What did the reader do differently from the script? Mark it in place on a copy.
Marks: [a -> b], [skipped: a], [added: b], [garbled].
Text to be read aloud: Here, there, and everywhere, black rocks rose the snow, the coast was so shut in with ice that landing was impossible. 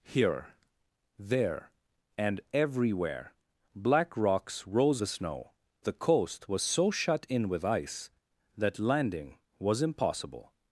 Here, there, and everywhere, black rocks rose the snow, the coast was so shut in with ice that landing was impossible.